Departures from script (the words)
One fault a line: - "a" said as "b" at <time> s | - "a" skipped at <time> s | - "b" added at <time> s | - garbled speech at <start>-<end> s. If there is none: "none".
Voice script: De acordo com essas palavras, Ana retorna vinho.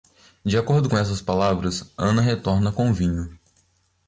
- "com" added at 2.7 s